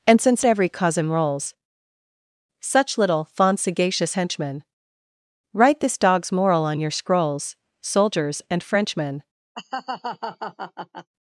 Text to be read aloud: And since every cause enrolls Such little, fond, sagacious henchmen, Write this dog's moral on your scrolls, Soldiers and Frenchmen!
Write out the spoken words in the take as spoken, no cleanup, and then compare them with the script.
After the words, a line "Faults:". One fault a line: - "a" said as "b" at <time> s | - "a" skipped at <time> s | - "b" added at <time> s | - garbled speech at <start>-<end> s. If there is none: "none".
And since every cause enrolls Such little, fond, sagacious henchmen, Write this dog's moral on your scrolls, Soldiers and Frenchmen!
Faults:
none